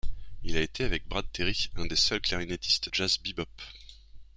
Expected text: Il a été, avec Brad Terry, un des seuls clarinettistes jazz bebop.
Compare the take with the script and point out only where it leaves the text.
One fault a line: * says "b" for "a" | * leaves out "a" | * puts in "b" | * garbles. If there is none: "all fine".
all fine